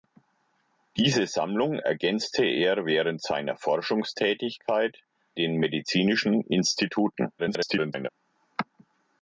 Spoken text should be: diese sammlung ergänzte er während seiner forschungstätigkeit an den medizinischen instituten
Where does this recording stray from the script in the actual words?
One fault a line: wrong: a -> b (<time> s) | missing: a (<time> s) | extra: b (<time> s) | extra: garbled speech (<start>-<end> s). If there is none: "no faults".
missing: an (5.0 s)
extra: garbled speech (7.4-8.1 s)